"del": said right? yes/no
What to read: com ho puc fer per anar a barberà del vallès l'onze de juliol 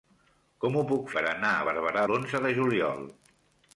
no